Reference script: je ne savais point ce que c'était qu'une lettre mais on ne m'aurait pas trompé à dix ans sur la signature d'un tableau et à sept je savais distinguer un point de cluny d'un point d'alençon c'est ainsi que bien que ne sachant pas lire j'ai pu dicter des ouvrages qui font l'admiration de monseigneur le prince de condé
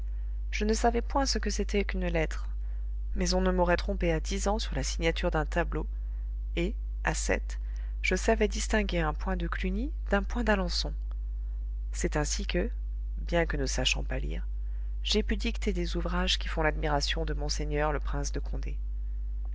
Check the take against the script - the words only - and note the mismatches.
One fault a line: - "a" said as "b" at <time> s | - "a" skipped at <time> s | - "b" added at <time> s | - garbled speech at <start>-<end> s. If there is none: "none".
- "pas" skipped at 3.8 s